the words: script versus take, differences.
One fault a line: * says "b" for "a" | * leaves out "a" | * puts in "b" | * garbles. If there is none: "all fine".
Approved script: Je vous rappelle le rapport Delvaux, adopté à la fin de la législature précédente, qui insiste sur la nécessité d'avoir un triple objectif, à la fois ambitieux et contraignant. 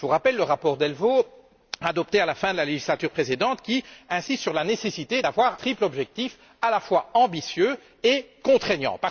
* leaves out "un"